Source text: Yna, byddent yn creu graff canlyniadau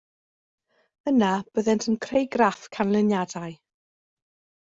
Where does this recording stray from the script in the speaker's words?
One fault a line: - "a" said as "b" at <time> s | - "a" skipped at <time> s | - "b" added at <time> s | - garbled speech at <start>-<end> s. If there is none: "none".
none